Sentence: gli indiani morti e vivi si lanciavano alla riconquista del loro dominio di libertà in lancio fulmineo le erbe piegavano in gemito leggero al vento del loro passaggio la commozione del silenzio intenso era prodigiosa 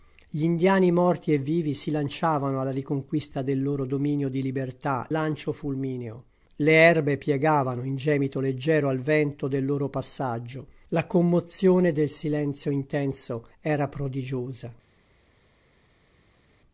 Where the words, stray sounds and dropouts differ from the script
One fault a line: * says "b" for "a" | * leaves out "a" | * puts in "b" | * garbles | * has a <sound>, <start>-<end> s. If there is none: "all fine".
* leaves out "in"